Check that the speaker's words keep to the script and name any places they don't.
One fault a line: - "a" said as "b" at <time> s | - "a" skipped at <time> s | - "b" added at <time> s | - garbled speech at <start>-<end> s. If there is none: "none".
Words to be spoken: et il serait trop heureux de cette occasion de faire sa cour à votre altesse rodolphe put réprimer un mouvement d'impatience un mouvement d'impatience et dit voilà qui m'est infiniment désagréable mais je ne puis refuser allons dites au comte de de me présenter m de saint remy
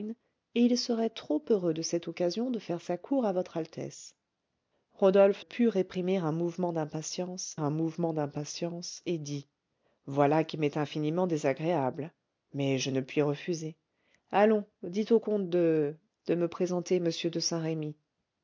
none